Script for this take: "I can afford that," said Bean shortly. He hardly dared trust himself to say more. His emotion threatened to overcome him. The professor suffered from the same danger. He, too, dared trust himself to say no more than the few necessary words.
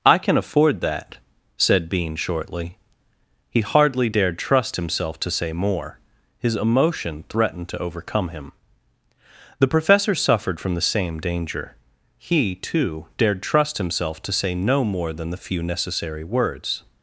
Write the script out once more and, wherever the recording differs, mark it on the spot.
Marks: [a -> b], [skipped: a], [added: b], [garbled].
"I can afford that," said Bean shortly. He hardly dared trust himself to say more. His emotion threatened to overcome him. The professor suffered from the same danger. He, too, dared trust himself to say no more than the few necessary words.